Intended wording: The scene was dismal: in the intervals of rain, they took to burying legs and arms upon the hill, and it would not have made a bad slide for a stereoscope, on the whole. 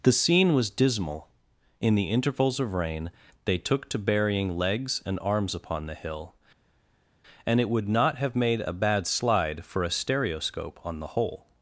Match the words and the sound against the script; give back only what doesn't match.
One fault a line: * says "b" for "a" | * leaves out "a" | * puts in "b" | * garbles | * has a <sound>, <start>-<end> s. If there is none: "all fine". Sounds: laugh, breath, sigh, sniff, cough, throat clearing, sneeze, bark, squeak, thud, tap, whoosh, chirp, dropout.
all fine